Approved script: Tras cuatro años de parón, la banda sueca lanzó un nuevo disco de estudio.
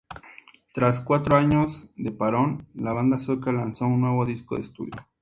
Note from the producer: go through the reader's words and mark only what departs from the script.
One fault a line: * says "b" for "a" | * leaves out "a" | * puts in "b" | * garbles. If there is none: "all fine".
all fine